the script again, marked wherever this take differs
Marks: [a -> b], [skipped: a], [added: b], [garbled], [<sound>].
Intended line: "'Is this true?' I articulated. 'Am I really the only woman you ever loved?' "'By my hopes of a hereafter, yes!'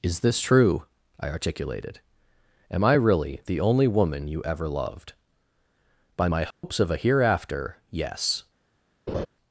"'Is this true?' I articulated. 'Am I really the only woman you ever loved?' "'By my hopes [dropout] of a hereafter, yes!' [laugh]